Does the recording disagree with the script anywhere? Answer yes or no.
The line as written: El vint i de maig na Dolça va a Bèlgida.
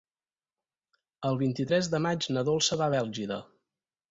yes